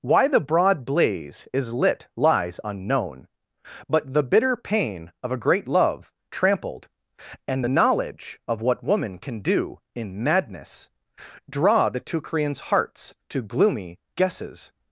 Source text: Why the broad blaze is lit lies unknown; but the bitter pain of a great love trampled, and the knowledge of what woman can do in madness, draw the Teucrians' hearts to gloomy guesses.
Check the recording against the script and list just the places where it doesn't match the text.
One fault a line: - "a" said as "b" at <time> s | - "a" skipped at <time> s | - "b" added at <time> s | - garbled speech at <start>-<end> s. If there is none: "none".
none